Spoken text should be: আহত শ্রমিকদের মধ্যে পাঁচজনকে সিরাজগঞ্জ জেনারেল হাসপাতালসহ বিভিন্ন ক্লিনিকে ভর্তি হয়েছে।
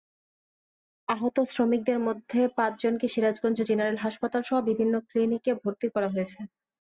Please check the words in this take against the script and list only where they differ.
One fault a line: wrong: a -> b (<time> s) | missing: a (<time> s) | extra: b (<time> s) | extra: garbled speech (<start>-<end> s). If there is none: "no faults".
extra: করা (5.9 s)